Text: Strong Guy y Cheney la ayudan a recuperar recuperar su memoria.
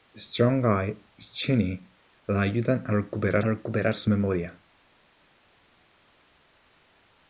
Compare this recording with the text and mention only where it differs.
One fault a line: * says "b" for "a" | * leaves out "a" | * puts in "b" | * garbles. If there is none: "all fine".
all fine